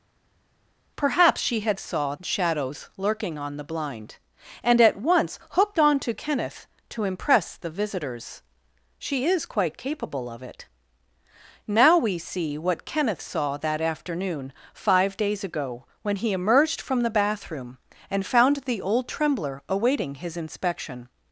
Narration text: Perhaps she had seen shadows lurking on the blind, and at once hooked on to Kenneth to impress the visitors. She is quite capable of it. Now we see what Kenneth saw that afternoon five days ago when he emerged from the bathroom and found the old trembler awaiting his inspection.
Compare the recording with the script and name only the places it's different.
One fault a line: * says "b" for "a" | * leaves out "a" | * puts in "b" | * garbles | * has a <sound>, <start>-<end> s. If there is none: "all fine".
* says "saw" for "seen"